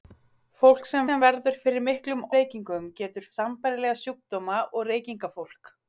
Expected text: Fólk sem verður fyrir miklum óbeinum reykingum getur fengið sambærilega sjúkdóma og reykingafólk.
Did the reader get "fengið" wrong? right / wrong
wrong